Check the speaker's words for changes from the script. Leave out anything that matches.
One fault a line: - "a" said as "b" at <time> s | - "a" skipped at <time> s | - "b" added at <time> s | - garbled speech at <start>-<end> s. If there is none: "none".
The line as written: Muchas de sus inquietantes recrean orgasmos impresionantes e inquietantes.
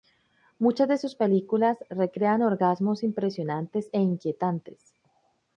- "inquietantes" said as "películas" at 1.1 s